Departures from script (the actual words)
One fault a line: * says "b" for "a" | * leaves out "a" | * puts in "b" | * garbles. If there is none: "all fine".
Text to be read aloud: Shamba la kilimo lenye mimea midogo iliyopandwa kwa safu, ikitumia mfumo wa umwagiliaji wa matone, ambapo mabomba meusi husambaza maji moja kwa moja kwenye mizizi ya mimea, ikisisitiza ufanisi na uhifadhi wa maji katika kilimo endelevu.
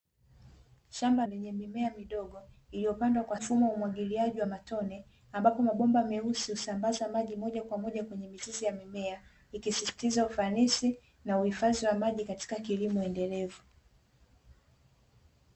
* leaves out "la kilimo"
* leaves out "safu ikitumia"